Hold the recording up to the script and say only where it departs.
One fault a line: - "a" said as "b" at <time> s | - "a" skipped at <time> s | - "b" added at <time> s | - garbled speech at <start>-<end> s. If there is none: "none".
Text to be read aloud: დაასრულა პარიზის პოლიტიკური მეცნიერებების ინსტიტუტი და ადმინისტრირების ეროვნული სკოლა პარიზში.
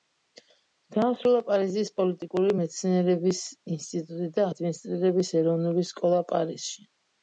none